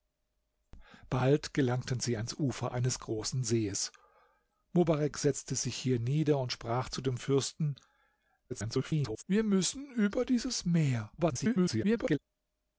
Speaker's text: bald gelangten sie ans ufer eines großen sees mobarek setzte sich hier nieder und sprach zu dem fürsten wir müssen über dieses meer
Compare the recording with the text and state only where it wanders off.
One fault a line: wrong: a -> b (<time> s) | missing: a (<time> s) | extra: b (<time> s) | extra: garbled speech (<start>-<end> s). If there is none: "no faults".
extra: garbled speech (8.5-9.2 s)
extra: garbled speech (11.2-12.2 s)